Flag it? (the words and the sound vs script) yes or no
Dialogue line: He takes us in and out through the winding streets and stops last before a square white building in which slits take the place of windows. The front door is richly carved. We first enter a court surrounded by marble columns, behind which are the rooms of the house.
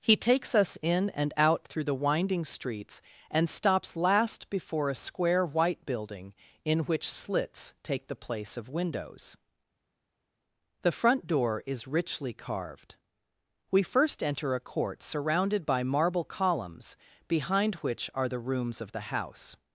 no